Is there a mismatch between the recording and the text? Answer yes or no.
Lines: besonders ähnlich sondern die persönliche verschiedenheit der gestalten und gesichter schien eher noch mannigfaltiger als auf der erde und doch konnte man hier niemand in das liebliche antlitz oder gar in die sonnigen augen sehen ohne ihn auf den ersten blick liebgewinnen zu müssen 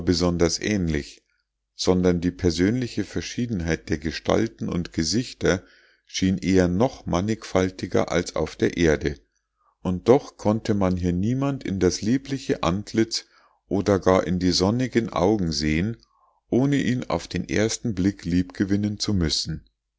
no